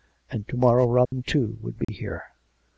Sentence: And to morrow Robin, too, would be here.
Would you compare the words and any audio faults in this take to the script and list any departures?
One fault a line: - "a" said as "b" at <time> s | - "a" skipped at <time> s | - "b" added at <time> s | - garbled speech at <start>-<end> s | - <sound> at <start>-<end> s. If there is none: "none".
- dropout at 1.1-1.1 s
- dropout at 1.8-1.9 s